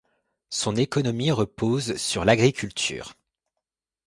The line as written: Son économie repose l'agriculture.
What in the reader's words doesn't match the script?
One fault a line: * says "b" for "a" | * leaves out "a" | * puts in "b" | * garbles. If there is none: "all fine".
* puts in "sur"